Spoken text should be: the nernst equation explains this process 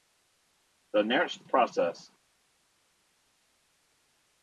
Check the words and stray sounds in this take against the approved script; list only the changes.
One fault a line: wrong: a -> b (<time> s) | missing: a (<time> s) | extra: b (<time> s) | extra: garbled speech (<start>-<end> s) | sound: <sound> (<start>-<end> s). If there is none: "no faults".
missing: equation explains this (1.5 s)